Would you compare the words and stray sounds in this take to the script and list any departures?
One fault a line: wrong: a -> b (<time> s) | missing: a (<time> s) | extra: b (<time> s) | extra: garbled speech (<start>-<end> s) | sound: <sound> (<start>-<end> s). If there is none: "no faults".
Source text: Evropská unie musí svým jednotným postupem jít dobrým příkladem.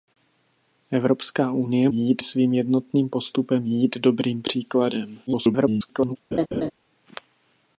wrong: musí -> jít (1.9 s)
extra: garbled speech (5.3-6.2 s)
sound: laugh (6.3-6.7 s)